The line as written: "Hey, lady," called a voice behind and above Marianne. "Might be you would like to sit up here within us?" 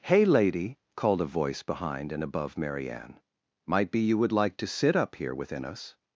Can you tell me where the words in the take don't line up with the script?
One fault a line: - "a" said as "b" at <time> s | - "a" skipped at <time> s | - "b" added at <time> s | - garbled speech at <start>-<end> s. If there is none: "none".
none